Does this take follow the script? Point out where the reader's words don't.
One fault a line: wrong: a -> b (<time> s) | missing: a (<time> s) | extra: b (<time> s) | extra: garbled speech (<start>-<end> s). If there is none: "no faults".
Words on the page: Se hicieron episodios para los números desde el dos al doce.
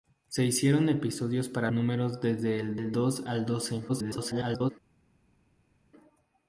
missing: los (1.7 s)
extra: el (2.8 s)
extra: garbled speech (3.9-4.7 s)